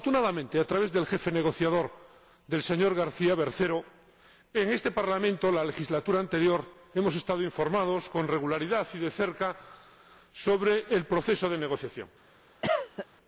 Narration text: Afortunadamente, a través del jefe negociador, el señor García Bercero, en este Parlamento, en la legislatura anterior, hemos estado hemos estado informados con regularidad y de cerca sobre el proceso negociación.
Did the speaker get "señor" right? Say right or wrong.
right